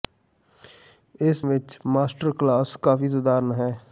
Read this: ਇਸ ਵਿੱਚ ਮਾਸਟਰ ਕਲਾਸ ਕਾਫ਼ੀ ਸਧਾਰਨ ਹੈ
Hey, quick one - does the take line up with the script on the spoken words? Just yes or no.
yes